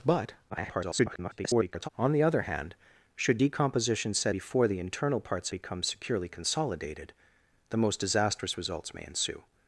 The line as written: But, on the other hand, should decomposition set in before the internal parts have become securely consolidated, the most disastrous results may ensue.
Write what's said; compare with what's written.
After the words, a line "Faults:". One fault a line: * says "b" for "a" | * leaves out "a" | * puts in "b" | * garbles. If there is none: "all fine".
But, [garbled] on the other hand, should decomposition set before the internal parts become securely consolidated, the most disastrous results may ensue.
Faults:
* garbles
* leaves out "in"
* leaves out "have"